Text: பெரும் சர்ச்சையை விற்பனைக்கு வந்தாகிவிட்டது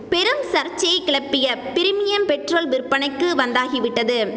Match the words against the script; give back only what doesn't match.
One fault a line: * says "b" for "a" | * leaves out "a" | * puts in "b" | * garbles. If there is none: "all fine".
* puts in "கிளப்பிய பிரிமியம் பெட்ரோல்"